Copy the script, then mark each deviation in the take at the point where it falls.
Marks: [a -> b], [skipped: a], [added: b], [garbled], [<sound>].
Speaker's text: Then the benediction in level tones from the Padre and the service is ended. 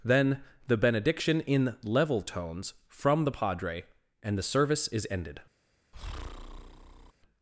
Then the benediction in level tones from the Padre and the service is ended. [breath]